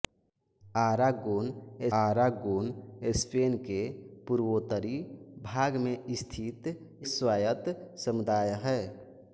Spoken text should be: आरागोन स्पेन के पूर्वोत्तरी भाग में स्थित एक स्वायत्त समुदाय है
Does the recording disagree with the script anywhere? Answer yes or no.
yes